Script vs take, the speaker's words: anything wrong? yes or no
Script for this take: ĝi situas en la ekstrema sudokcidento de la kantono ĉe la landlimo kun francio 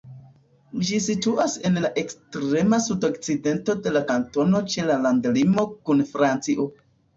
no